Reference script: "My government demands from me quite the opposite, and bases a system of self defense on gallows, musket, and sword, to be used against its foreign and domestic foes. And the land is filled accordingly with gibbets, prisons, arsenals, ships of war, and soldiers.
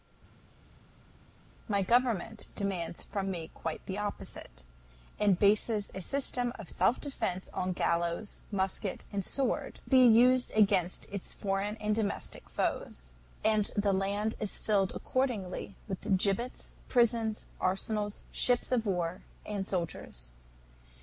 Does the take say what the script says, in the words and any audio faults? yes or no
no